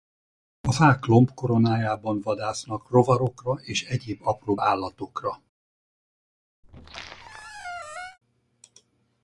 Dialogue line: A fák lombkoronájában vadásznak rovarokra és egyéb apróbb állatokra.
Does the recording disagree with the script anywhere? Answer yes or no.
no